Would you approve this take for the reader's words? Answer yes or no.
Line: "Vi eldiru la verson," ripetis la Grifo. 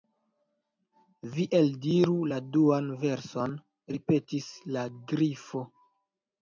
no